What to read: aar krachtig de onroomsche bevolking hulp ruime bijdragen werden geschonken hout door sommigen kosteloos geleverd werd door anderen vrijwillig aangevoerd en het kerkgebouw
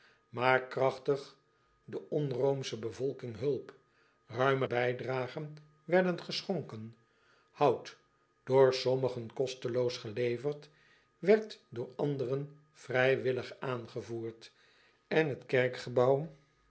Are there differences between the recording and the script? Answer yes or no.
no